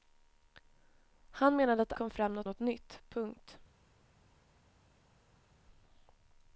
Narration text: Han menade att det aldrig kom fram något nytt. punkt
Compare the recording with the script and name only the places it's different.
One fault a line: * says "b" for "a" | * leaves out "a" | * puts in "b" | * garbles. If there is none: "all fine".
* leaves out "aldrig"
* puts in "något"